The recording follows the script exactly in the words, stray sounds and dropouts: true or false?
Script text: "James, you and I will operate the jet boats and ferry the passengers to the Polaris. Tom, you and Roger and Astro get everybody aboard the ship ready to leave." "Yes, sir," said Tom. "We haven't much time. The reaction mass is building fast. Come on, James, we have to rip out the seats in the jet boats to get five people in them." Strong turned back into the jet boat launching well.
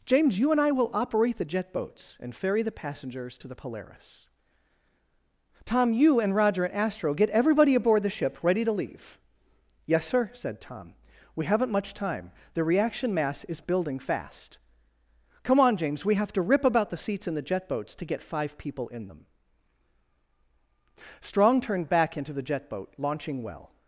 false